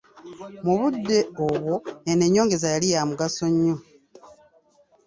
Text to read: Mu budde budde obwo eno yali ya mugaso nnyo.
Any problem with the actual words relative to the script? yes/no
yes